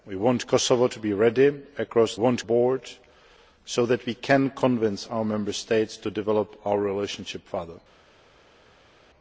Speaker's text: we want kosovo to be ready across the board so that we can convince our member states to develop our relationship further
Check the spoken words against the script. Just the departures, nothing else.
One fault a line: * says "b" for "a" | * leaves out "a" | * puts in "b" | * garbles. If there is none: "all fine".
* says "want" for "the"